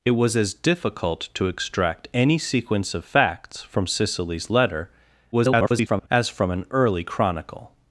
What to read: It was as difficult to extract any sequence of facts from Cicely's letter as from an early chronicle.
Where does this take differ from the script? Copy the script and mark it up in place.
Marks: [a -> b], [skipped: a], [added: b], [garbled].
It was as difficult to extract any sequence of facts from Cicely's letter [garbled] as from an early chronicle.